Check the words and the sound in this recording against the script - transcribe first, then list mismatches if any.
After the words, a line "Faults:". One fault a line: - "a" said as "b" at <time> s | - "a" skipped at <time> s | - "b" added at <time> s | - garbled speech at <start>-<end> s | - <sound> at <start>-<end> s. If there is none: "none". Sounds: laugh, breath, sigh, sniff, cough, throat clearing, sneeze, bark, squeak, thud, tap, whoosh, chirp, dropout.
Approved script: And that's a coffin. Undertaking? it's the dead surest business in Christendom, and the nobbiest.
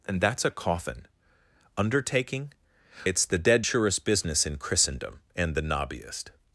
And that's a coffin. Undertaking? it's the dead surest business in Christendom, and the nobbiest.
Faults:
none